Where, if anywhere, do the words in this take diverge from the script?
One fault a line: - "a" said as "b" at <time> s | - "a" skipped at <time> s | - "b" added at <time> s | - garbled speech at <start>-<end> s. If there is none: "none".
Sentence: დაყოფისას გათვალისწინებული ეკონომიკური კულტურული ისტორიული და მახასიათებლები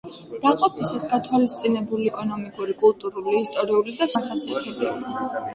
none